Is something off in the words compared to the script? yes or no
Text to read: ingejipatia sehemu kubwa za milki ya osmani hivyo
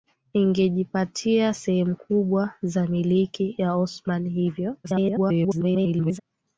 yes